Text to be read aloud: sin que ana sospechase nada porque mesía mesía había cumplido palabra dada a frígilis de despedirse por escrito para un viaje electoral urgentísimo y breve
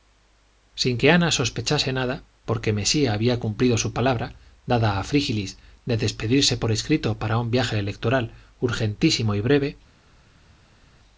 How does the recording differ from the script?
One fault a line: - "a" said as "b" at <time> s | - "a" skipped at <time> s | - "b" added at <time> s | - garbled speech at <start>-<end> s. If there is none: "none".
- "mesía" skipped at 3.1 s
- "su" added at 3.8 s